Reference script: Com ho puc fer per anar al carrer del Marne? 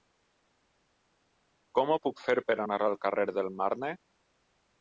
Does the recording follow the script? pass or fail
pass